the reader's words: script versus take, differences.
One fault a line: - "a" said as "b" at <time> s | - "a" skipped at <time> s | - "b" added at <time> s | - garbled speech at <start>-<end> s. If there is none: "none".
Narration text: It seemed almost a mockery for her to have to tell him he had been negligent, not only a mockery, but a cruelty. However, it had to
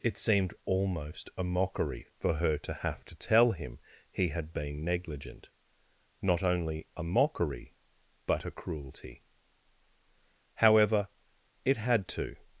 none